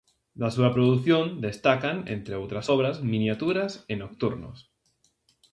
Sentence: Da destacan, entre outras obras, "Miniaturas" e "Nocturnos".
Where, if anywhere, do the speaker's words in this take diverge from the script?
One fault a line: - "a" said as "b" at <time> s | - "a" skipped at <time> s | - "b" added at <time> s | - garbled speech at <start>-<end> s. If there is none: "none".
- "súa produción" added at 0.6 s